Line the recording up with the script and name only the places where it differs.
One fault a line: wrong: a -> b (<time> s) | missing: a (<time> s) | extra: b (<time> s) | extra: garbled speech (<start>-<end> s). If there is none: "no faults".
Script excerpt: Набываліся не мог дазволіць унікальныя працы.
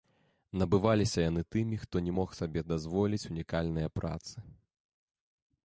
extra: яны тымі хто (1.3 s)
extra: сабе (2.4 s)